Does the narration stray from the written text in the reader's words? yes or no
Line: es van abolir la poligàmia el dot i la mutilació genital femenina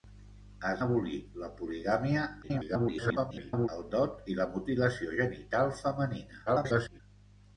yes